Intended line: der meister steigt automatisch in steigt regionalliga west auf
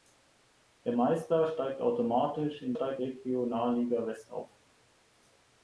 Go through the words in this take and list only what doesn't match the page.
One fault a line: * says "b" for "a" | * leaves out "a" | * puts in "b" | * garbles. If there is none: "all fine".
all fine